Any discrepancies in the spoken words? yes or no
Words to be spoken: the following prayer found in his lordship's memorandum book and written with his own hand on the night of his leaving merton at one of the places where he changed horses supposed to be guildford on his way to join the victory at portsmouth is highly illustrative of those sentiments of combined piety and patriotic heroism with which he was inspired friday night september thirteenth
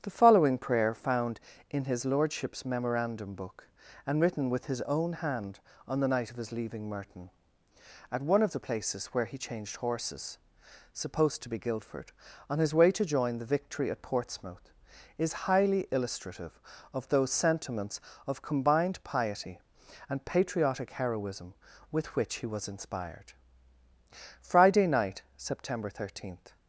no